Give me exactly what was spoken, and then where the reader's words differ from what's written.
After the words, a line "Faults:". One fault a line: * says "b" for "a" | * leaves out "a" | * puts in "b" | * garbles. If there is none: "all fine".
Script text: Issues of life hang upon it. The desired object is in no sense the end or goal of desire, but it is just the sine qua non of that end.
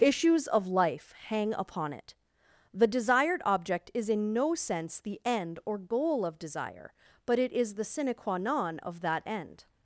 Issues of life hang upon it. The desired object is in no sense the end or goal of desire, but it is the sine qua non of that end.
Faults:
* leaves out "just"